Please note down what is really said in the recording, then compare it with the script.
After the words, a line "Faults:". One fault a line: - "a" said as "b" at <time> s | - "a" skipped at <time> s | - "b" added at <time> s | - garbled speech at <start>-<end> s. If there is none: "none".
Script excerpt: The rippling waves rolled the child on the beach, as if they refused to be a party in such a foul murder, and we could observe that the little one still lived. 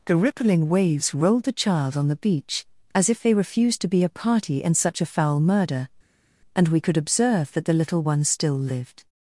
The rippling waves rolled the child on the beach, as if they refused to be a party in such a foul murder, and we could observe that the little one still lived.
Faults:
none